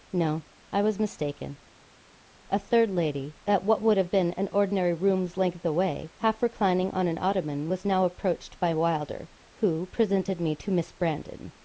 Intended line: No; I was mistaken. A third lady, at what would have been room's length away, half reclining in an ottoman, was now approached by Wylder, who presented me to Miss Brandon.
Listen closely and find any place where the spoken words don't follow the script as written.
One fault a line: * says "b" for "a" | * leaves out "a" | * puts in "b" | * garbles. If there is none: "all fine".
* puts in "an ordinary"
* says "on" for "in"